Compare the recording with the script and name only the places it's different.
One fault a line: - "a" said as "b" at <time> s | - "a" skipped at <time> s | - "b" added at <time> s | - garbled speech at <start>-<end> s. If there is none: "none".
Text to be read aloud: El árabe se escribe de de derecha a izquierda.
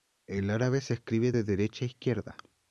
- "de" skipped at 1.4 s